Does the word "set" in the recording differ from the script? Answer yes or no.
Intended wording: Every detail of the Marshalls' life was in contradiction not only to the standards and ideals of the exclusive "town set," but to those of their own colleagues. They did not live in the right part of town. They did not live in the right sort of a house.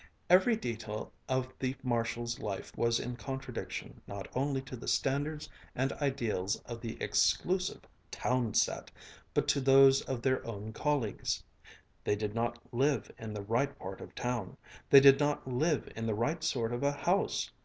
no